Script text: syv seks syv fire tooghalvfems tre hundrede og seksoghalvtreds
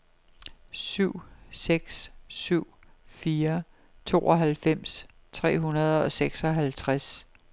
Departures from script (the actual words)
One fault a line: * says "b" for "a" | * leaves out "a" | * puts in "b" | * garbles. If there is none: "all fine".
all fine